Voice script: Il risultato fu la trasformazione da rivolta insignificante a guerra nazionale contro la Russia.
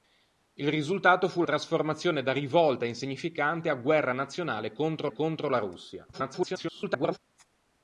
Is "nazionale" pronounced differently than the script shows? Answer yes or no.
no